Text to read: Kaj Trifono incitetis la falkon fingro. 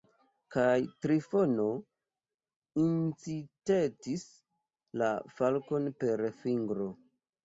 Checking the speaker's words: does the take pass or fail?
fail